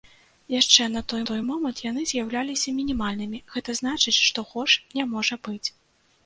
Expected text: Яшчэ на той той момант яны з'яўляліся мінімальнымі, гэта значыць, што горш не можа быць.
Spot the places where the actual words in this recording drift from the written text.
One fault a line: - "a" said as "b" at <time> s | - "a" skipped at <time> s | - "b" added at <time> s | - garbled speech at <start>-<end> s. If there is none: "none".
none